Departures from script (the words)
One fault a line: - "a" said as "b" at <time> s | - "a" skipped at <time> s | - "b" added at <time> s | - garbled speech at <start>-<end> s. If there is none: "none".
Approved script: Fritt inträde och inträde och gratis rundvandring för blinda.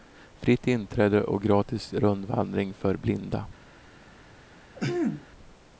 - "inträde och" skipped at 1.4 s